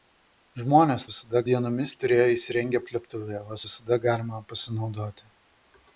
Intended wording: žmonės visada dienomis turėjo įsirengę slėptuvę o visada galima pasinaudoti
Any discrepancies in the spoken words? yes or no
no